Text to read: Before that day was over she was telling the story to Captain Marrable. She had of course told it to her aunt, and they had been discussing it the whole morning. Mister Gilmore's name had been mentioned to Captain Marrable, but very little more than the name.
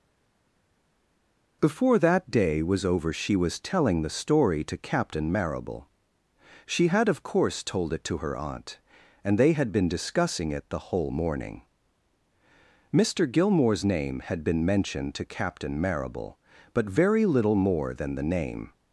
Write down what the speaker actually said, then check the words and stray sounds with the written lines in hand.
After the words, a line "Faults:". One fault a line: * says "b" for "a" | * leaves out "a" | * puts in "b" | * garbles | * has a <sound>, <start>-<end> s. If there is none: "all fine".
Before that day was over she was telling the story to Captain Marrable. She had of course told it to her aunt, and they had been discussing it the whole morning. Mister Gilmore's name had been mentioned to Captain Marrable, but very little more than the name.
Faults:
all fine